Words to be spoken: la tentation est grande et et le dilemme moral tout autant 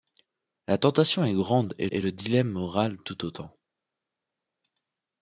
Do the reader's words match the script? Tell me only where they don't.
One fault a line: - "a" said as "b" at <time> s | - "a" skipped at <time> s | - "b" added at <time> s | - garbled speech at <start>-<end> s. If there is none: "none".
none